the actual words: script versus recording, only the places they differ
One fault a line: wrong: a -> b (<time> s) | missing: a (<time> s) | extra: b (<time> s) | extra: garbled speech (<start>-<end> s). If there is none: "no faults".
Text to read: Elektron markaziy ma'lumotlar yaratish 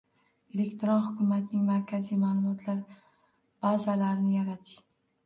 extra: hukumatning (1.1 s)
extra: bazalarini (3.7 s)